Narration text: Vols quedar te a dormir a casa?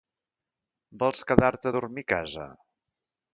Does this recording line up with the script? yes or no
yes